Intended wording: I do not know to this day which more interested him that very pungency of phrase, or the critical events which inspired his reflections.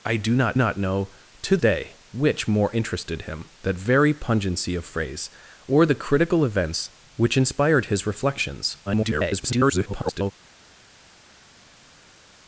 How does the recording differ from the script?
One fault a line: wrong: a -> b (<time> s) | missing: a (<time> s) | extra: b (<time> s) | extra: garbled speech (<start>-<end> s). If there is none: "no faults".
extra: not (0.5 s)
missing: this (1.6 s)
extra: garbled speech (8.9-10.3 s)